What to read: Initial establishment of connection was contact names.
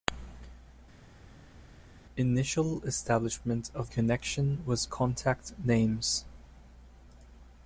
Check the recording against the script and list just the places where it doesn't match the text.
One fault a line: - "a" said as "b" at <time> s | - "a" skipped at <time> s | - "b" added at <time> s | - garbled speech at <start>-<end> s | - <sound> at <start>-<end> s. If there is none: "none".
none